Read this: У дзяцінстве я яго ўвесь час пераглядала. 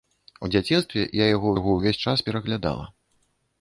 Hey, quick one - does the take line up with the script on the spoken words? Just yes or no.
no